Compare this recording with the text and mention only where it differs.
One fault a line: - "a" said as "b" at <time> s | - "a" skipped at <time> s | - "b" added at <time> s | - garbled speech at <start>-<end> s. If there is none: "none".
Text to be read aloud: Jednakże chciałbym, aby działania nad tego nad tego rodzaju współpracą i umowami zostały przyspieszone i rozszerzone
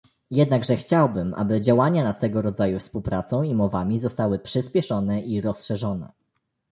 - "nad tego" skipped at 2.4 s